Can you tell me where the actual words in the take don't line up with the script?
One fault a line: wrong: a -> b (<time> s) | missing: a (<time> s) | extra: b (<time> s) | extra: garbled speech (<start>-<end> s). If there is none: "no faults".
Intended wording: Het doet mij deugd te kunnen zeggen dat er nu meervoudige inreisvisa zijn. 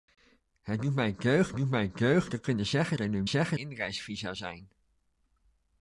extra: doet mij deugd (1.6 s)
missing: dat (3.0 s)
wrong: meervoudige -> zeggen (3.3 s)